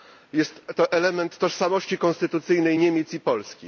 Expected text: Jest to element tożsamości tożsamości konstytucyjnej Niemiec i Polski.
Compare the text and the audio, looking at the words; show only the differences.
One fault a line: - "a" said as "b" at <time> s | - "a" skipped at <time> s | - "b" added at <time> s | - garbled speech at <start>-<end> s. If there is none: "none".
- "tożsamości" skipped at 2.0 s